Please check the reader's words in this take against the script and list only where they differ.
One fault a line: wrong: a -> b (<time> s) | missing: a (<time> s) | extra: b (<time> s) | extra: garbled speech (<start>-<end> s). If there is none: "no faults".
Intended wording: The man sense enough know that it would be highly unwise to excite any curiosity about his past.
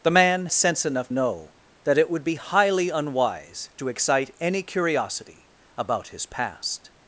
no faults